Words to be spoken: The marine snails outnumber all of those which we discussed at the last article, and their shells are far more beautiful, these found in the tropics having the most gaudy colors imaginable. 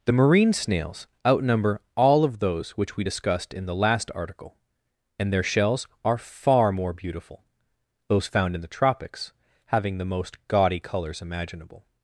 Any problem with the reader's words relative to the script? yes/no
yes